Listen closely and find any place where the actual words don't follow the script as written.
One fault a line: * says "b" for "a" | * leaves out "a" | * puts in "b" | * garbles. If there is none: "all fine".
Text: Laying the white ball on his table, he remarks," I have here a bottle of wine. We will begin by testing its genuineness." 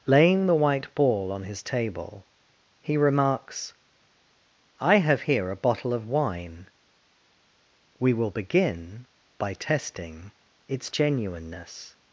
all fine